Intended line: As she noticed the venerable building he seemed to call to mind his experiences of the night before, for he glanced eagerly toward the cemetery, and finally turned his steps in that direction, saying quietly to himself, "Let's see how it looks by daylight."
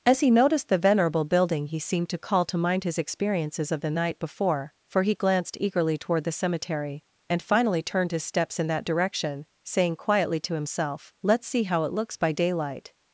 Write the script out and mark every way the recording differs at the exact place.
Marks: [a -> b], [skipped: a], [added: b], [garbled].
As [she -> he] noticed the venerable building he seemed to call to mind his experiences of the night before, for he glanced eagerly toward the cemetery, and finally turned his steps in that direction, saying quietly to himself, "Let's see how it looks by daylight."